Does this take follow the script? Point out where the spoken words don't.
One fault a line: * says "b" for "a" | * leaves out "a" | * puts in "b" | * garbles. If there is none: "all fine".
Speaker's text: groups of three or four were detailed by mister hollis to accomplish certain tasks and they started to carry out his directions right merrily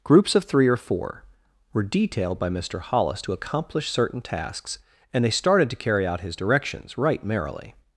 all fine